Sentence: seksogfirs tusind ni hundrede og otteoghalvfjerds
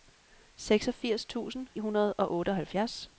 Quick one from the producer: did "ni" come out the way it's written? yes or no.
no